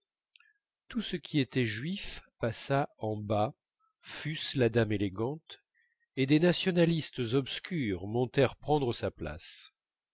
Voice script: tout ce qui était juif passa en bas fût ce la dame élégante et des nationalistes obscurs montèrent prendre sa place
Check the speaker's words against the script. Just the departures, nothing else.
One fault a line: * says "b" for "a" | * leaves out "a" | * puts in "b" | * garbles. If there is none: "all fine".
all fine